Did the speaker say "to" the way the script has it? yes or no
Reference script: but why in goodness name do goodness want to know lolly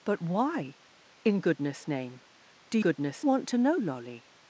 yes